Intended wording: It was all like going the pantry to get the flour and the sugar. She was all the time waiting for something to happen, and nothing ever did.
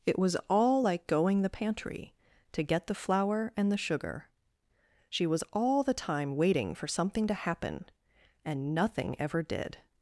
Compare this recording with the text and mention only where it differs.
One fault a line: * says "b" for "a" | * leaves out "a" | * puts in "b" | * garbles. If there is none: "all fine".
all fine